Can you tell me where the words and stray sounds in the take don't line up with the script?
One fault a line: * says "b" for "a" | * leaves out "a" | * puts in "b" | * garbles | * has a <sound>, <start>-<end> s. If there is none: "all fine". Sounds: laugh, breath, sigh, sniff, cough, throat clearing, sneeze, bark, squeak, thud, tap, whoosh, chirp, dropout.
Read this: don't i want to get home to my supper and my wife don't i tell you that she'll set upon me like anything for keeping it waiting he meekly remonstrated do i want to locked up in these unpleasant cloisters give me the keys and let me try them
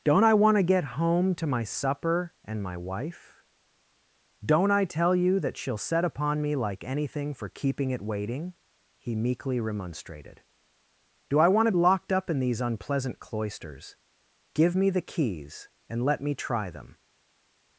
all fine